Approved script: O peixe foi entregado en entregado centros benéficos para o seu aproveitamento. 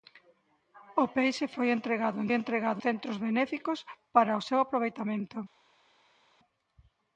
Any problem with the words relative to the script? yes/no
no